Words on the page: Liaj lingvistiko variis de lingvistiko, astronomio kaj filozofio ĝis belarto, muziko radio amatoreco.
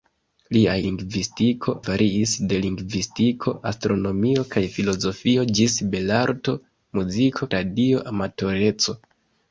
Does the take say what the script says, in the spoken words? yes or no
yes